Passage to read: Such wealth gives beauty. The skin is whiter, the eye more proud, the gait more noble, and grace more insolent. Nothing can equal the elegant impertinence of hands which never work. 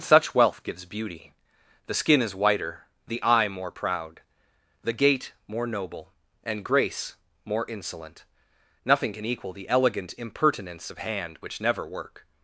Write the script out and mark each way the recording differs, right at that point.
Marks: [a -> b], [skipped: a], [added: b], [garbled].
Such wealth gives beauty. The skin is whiter, the eye more proud, the gait more noble, and grace more insolent. Nothing can equal the elegant impertinence of [hands -> hand] which never work.